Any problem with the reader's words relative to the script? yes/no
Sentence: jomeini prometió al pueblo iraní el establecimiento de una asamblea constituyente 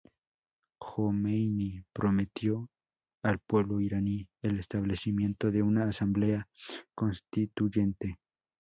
no